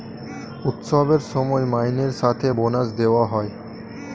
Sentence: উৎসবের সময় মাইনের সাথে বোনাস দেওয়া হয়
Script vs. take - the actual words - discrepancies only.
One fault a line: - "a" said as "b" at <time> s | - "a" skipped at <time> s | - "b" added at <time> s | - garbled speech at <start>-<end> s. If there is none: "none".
none